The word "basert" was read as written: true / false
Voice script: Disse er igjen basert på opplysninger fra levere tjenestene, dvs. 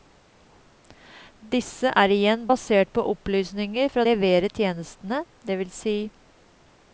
true